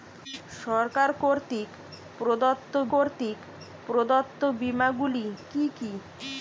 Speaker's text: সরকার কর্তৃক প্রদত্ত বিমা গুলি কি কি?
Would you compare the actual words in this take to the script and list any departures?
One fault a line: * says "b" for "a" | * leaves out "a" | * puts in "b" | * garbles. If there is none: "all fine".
* puts in "কর্তৃক প্রদত্ত"